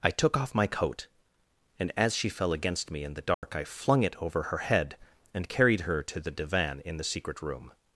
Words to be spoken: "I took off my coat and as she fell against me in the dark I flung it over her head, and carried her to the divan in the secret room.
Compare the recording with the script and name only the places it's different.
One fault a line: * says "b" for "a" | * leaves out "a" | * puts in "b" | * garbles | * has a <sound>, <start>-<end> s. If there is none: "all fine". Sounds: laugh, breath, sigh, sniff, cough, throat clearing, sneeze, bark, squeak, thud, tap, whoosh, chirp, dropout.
* has a dropout, 3.3-3.4 s